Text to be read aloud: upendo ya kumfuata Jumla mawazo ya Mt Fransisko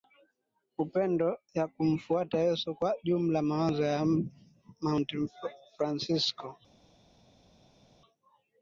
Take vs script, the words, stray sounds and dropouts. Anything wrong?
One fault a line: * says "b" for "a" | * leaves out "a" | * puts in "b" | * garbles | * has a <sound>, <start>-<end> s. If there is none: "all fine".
* puts in "Yesu Kwa"